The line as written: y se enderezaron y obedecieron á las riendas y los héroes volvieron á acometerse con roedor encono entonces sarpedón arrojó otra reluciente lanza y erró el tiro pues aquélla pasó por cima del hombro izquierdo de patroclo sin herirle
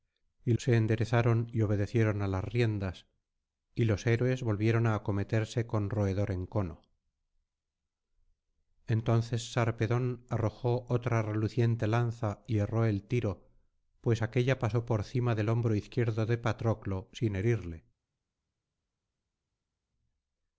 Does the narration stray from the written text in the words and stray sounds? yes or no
no